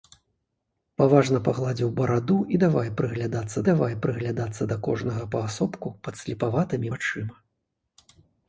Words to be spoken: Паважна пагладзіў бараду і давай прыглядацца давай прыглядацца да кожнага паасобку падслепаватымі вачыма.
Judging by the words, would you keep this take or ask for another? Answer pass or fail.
pass